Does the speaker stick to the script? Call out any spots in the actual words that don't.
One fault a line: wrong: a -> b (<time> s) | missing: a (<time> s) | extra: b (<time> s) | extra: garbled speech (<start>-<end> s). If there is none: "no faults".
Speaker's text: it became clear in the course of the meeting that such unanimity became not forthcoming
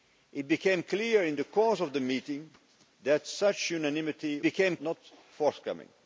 no faults